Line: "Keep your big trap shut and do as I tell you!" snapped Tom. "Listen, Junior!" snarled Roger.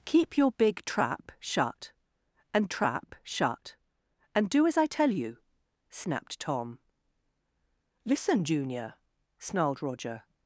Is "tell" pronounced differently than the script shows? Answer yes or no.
no